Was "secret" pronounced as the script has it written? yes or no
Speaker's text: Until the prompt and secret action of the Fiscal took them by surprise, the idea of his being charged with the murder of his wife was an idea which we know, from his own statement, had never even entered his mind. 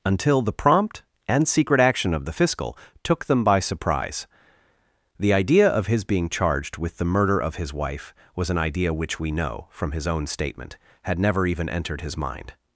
yes